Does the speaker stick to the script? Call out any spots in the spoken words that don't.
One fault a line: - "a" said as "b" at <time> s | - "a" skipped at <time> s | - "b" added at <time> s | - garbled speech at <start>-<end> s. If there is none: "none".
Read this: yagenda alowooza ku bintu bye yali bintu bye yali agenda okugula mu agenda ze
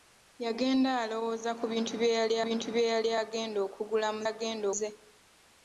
none